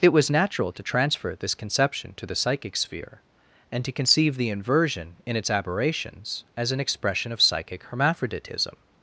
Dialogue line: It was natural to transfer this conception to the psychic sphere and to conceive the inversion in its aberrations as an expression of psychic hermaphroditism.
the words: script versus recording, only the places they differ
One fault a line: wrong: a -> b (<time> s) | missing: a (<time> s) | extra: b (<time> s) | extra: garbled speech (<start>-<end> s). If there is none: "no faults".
no faults